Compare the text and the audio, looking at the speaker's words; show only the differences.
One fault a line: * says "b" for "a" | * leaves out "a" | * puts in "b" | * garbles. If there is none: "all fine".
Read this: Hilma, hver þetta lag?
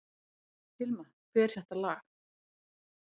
all fine